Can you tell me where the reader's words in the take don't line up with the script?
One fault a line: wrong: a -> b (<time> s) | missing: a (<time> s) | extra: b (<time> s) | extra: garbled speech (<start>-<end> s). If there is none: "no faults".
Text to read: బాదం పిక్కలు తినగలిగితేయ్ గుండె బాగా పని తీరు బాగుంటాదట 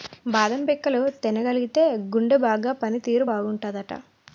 no faults